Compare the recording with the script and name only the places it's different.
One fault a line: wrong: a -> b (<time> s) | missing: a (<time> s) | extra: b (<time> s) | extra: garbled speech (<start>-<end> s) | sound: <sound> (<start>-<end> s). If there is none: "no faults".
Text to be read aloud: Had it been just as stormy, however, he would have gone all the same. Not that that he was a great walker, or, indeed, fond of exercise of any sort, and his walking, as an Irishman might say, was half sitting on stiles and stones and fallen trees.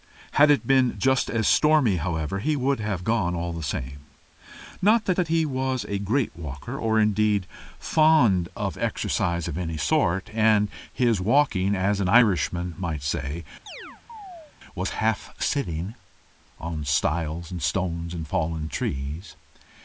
sound: chirp (13.7-14.5 s)